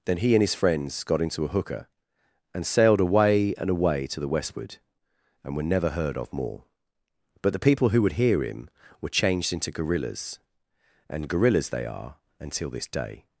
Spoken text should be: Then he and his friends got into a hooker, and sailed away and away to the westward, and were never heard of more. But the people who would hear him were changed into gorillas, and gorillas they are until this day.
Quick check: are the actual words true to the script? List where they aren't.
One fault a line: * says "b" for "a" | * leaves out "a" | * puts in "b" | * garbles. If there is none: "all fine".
all fine